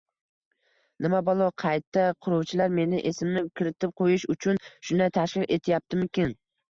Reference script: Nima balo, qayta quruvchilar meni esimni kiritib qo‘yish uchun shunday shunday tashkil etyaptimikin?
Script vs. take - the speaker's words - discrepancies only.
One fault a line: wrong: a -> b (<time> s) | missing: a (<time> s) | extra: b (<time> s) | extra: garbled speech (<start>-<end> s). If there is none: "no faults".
missing: shunday (5.1 s)